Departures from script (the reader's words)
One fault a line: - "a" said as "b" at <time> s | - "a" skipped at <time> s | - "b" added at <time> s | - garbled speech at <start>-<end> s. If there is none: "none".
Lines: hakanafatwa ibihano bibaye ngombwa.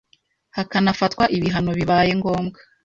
none